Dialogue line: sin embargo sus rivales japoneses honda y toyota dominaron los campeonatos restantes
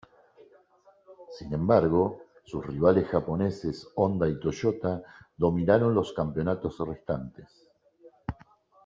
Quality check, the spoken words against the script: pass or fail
pass